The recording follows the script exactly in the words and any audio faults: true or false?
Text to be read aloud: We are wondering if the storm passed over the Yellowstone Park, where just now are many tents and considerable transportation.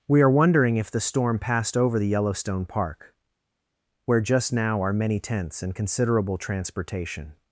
true